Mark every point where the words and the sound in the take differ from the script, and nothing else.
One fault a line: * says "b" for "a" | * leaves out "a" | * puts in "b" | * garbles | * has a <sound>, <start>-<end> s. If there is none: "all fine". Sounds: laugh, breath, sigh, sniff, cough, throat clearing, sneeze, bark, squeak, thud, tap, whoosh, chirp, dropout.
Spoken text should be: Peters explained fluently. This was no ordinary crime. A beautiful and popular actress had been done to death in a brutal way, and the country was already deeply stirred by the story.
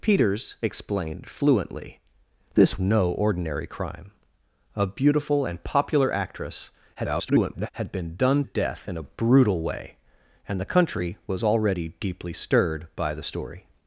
* leaves out "was"
* garbles
* leaves out "to"